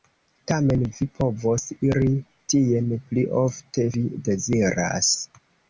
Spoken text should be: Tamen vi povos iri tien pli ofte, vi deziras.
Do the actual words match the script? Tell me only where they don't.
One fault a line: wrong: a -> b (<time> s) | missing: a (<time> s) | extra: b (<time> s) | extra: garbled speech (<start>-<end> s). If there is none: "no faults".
no faults